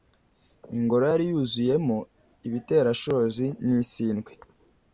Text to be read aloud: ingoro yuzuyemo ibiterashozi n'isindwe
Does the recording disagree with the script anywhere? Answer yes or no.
yes